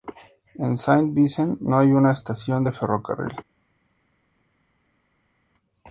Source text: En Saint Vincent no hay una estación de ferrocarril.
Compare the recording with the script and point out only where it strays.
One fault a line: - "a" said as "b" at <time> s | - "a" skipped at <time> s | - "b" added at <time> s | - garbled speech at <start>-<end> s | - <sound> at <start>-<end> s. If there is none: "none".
none